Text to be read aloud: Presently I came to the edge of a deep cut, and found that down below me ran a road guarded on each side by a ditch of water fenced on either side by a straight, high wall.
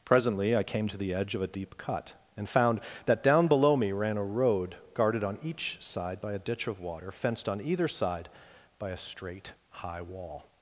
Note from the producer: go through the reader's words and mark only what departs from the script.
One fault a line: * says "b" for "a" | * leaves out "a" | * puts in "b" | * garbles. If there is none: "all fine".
all fine